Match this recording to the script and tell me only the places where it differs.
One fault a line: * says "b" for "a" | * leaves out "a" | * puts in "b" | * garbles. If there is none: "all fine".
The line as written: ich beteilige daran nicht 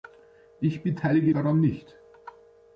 all fine